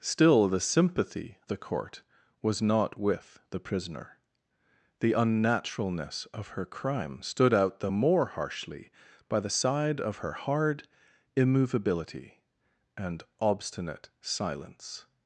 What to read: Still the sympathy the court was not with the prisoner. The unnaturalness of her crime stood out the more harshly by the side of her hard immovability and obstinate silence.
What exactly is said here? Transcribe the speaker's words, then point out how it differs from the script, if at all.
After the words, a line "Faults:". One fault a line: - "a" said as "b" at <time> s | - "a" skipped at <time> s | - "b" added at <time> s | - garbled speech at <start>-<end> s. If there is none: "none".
Still the sympathy the court was not with the prisoner. The unnaturalness of her crime stood out the more harshly by the side of her hard immovability and obstinate silence.
Faults:
none